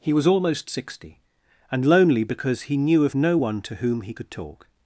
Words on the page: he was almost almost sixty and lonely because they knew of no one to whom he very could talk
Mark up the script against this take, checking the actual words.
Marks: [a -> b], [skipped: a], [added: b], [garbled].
he was almost [skipped: almost] sixty and lonely because [they -> he] knew of no one to whom he [skipped: very] could talk